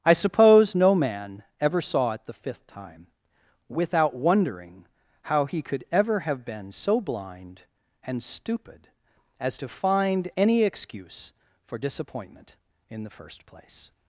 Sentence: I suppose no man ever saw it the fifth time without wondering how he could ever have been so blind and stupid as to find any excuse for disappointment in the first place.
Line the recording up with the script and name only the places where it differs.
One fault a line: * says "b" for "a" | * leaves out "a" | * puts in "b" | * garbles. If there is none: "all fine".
all fine